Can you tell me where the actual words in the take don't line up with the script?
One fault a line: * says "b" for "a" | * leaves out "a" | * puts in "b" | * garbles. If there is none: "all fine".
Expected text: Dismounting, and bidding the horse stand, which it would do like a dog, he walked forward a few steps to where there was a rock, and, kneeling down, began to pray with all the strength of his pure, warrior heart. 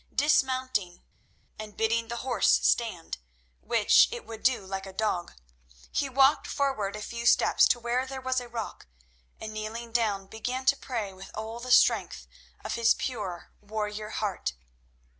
all fine